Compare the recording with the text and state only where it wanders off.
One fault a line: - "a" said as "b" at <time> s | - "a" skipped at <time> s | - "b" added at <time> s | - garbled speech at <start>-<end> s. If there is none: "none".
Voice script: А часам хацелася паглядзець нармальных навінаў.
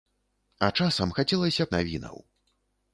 - "паглядзець нармальных" skipped at 1.7 s